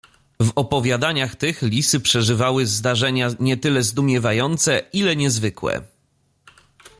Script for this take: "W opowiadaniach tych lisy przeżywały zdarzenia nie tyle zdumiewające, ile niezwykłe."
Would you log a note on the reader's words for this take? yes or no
no